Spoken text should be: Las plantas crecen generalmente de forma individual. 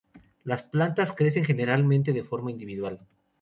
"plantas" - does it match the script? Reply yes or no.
yes